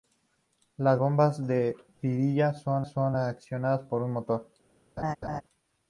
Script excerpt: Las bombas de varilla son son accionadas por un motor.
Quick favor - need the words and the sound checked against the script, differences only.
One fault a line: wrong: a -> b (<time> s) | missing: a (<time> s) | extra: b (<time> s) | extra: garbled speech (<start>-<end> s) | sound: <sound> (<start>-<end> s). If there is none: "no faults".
sound: laugh (5.0-5.4 s)